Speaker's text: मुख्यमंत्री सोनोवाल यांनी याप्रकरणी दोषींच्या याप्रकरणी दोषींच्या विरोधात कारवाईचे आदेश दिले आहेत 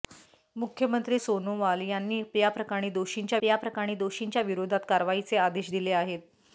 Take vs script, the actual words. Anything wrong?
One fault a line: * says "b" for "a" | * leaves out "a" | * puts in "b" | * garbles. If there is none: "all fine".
all fine